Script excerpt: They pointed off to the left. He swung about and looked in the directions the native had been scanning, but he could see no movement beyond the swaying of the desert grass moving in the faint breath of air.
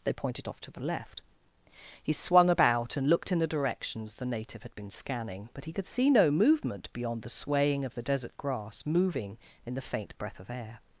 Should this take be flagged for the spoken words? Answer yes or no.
no